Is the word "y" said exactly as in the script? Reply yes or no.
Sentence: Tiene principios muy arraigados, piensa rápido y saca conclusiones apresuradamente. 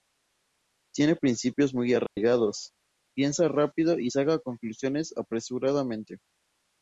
yes